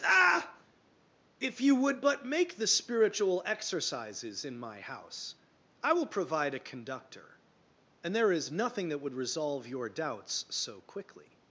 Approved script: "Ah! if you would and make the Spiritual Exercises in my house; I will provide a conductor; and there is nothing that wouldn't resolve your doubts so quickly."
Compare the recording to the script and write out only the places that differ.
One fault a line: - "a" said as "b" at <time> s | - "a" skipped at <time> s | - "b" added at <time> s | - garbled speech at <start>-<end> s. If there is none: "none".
- "and" said as "but" at 2.0 s
- "wouldn't" said as "would" at 9.0 s